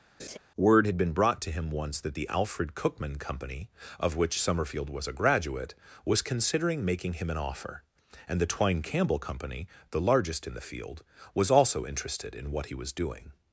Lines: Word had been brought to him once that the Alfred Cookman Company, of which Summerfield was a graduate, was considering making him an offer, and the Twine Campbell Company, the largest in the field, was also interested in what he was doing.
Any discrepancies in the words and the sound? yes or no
yes